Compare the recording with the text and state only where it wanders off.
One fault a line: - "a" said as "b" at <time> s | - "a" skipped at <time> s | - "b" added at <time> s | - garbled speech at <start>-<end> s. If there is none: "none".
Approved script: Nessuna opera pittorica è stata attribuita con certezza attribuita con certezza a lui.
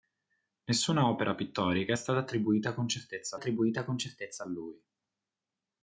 none